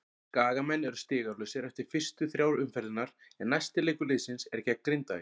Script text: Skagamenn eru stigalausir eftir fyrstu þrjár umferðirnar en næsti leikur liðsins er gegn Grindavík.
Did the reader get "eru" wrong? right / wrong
right